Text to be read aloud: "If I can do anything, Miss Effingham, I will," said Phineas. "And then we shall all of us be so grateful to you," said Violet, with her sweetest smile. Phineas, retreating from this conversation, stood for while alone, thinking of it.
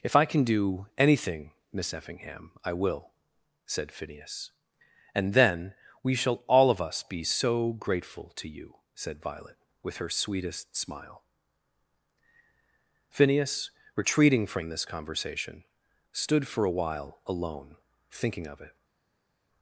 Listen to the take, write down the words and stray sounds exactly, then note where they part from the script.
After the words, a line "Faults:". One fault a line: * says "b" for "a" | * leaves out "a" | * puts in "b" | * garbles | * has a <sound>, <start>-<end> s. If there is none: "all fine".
"If I can do anything, Miss Effingham, I will," said Phineas. "And then we shall all of us be so grateful to you," said Violet, with her sweetest smile. Phineas, retreating from this conversation, stood for a while alone, thinking of it.
Faults:
* puts in "a"